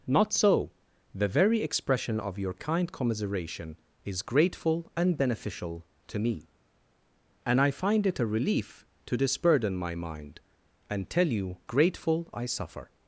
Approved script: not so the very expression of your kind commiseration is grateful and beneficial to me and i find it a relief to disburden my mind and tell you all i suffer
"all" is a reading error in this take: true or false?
true